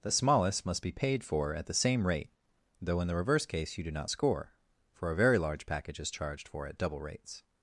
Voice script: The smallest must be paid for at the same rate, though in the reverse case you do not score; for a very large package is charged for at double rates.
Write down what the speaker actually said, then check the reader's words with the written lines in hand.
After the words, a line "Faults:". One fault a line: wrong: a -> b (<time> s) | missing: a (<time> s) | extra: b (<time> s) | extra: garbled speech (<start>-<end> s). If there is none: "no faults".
The smallest must be paid for at the same rate, though in the reverse case you do not score; for a very large package is charged for at double rates.
Faults:
no faults